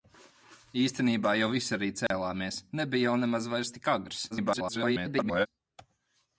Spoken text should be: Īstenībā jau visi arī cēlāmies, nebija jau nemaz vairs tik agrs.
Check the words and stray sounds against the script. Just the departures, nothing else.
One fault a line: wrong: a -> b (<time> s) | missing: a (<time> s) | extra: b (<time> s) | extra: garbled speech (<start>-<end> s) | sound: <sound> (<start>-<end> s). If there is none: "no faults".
sound: dropout (2.1-2.1 s)
extra: garbled speech (4.3-5.5 s)